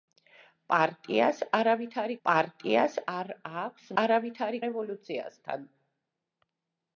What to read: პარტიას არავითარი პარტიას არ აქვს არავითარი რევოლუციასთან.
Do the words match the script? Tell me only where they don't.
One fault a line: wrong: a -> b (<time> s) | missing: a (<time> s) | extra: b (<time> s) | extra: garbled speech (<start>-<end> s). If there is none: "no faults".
no faults